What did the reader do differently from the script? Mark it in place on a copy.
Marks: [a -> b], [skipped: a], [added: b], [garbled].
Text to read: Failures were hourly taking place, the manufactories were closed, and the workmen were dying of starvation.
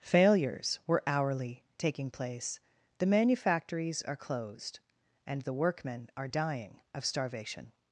Failures were hourly taking place, the manufactories [were -> are] closed, and the workmen [were -> are] dying of starvation.